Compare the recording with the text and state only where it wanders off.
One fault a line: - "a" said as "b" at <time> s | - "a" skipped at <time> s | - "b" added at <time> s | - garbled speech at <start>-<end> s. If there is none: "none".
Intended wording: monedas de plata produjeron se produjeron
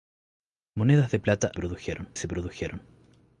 none